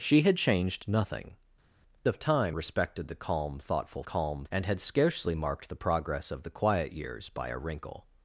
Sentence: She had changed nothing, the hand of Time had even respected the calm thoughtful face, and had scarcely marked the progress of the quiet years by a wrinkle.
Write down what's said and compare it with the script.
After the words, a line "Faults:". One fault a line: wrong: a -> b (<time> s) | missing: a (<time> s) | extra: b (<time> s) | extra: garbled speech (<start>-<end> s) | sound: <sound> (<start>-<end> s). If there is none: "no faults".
She had changed nothing, of Time respected the calm thoughtful calm, and had scarcely marked the progress of the quiet years by a wrinkle.
Faults:
missing: the hand (1.4 s)
missing: had even (2.6 s)
wrong: face -> calm (4.0 s)